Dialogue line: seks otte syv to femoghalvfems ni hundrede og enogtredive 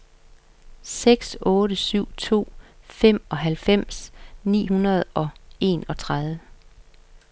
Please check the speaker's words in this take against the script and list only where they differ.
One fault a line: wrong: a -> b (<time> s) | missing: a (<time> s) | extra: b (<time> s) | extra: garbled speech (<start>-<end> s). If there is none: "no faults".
no faults